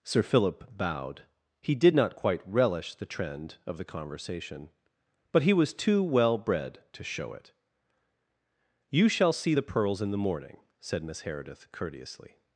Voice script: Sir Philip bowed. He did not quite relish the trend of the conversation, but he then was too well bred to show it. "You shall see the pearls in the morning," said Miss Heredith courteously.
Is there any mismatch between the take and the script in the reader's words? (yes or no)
yes